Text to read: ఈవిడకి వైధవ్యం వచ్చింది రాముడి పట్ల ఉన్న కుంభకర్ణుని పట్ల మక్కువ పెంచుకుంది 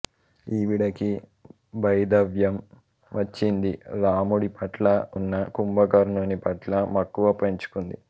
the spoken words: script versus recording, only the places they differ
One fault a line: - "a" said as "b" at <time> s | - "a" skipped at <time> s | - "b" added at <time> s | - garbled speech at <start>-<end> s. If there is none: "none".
none